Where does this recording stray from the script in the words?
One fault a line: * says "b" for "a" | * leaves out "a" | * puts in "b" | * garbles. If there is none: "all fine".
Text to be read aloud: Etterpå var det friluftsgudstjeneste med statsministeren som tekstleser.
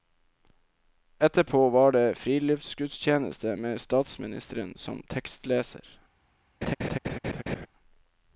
all fine